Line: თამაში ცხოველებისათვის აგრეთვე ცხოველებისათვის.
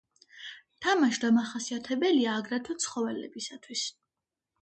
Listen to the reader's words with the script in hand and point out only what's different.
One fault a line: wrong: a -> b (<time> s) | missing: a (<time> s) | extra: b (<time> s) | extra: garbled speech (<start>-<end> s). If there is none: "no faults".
wrong: ცხოველებისათვის -> დამახასიათებელია (1.2 s)